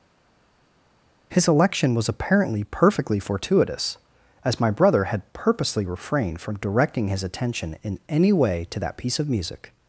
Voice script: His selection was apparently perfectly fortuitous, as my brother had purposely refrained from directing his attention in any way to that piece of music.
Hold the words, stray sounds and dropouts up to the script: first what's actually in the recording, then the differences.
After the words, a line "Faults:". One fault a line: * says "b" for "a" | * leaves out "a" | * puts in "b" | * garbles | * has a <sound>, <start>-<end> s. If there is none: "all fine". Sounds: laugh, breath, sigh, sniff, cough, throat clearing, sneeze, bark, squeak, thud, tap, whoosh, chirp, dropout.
His election was apparently perfectly fortuitous, as my brother had purposely refrained from directing his attention in any way to that piece of music.
Faults:
* says "election" for "selection"